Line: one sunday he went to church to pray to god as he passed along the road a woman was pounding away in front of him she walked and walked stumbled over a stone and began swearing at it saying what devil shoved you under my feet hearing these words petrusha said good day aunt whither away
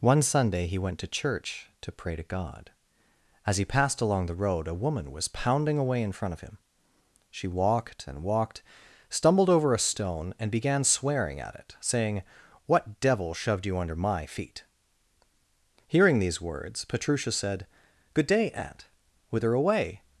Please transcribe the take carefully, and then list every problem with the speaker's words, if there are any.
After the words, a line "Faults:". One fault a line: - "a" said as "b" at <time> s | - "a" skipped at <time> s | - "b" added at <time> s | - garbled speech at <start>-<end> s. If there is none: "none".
one sunday he went to church to pray to god as he passed along the road a woman was pounding away in front of him she walked and walked stumbled over a stone and began swearing at it saying what devil shoved you under my feet hearing these words petrusha said good day aunt whither away
Faults:
none